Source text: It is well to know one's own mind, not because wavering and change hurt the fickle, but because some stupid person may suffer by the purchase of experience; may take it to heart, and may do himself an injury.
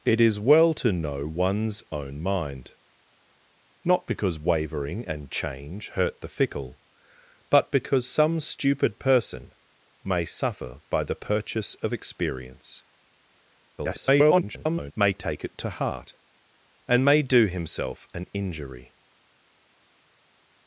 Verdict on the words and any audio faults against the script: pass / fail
fail